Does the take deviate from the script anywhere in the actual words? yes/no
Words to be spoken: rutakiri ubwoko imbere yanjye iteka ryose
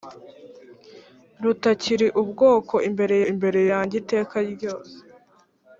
yes